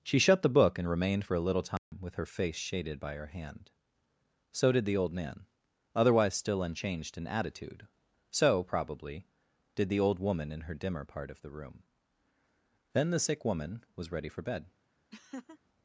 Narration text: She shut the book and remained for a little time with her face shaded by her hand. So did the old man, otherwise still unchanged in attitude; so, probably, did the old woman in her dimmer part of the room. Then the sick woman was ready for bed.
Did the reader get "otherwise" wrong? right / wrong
right